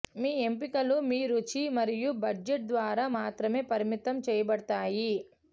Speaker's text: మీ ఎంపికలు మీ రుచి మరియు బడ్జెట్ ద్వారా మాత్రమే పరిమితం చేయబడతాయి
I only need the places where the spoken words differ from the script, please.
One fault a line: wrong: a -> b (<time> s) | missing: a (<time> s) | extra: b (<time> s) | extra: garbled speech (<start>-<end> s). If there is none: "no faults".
no faults